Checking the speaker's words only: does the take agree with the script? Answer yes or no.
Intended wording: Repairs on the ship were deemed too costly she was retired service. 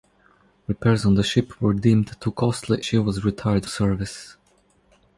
yes